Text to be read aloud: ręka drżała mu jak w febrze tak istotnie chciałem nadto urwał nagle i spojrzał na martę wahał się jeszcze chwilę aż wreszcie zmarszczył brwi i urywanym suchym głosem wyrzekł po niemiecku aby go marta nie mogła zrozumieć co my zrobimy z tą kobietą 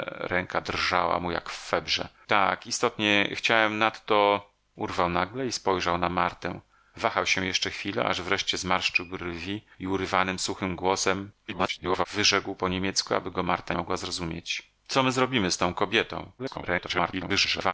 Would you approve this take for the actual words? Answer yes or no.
no